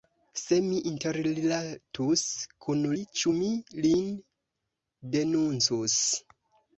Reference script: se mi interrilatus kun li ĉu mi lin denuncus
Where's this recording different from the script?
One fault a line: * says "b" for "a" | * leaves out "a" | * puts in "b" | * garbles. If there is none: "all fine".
all fine